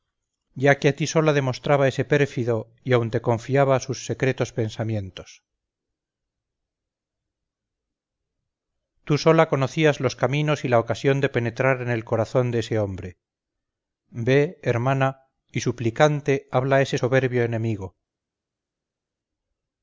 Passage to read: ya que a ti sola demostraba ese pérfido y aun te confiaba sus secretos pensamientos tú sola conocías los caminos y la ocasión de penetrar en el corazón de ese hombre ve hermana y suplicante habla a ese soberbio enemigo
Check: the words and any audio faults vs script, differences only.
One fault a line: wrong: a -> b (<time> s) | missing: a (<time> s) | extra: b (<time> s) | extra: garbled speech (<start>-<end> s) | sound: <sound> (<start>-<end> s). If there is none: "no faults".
no faults